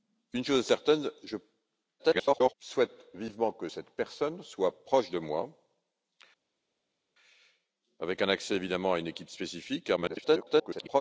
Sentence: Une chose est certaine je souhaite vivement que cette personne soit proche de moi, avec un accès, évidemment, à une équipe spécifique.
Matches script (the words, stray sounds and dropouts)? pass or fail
fail